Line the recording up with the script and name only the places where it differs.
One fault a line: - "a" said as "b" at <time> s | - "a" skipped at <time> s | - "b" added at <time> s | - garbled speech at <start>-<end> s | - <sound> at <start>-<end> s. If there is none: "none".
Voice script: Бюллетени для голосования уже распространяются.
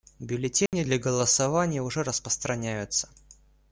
- dropout at 0.7-0.7 s